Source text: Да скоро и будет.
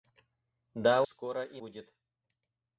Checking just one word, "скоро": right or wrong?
right